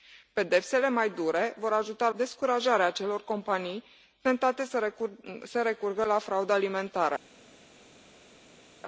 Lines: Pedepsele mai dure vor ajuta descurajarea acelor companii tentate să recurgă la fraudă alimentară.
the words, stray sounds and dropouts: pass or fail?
pass